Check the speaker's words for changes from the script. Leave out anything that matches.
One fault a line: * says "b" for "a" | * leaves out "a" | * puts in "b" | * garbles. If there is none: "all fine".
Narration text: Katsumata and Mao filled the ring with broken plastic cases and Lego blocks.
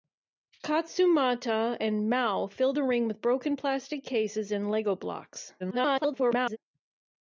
* garbles